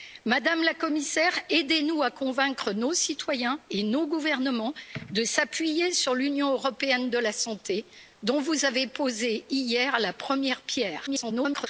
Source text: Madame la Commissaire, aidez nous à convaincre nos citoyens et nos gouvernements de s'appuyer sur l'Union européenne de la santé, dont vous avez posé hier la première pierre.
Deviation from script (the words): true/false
true